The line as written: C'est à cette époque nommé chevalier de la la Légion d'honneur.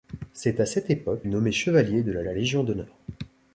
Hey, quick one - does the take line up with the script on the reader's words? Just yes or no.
yes